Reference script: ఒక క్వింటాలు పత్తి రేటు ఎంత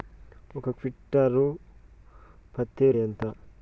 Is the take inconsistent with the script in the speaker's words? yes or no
yes